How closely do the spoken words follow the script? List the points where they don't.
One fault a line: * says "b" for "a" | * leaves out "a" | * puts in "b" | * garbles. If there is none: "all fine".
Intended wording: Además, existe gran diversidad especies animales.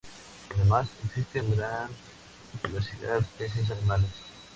all fine